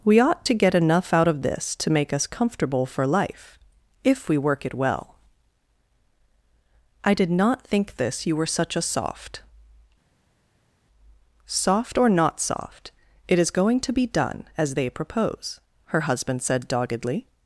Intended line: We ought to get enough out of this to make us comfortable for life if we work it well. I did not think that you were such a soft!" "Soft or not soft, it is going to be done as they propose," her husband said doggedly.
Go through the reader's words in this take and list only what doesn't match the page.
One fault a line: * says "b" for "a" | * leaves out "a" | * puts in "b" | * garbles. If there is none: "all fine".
* says "this" for "that"